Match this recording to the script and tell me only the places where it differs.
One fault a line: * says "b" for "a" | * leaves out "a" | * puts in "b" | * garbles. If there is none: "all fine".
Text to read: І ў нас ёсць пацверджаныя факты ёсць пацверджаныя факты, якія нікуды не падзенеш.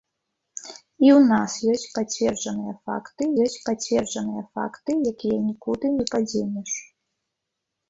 all fine